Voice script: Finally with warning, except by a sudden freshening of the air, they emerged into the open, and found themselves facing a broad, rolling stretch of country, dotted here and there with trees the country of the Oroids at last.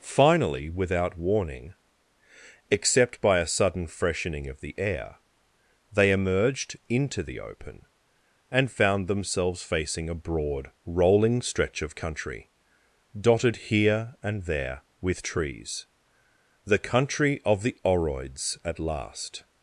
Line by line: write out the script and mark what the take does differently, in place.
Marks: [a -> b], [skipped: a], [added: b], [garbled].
Finally [with -> without] warning, except by a sudden freshening of the air, they emerged into the open, and found themselves facing a broad, rolling stretch of country, dotted here and there with trees the country of the Oroids at last.